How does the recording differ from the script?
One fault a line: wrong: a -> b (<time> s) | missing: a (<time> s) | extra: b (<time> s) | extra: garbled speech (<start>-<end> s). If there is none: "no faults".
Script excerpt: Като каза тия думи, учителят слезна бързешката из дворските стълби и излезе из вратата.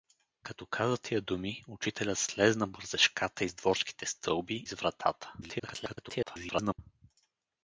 missing: и излезе (4.6 s)
extra: garbled speech (5.4-6.8 s)